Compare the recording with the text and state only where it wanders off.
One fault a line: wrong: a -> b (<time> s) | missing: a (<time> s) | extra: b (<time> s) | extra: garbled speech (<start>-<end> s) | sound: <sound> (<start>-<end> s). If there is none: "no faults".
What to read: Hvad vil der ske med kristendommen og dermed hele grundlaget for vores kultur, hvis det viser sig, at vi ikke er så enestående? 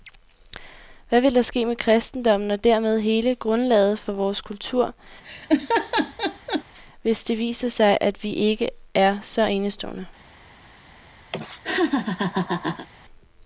sound: laugh (5.2-6.6 s)
sound: laugh (11.3-12.9 s)